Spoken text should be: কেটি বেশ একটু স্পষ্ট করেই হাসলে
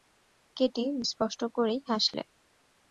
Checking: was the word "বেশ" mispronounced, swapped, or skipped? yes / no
yes